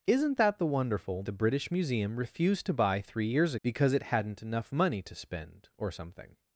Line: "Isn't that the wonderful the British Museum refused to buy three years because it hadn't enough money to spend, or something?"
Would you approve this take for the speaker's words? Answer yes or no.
yes